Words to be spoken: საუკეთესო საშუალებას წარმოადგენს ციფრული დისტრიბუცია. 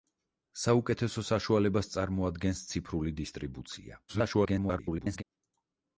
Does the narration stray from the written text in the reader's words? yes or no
yes